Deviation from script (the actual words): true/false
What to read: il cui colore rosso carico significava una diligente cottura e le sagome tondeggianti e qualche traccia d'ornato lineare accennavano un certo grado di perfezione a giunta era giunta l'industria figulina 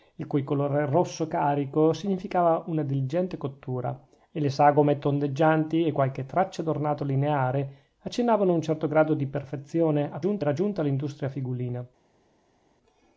false